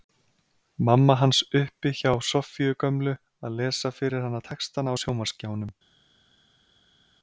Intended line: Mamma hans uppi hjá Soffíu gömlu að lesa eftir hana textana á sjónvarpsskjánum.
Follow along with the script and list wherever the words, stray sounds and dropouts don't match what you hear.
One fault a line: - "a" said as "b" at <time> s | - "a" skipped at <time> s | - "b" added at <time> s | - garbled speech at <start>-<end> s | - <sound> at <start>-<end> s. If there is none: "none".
- "eftir" said as "fyrir" at 4.0 s